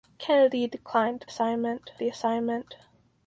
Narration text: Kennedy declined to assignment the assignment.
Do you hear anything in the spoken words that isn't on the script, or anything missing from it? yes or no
no